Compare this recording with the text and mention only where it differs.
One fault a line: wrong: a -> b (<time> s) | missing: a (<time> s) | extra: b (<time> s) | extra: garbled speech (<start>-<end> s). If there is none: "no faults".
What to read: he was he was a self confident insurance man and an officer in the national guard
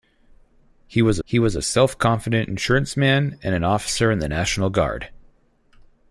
no faults